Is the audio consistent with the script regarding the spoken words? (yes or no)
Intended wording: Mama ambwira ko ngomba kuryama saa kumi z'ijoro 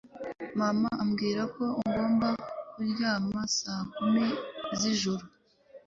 yes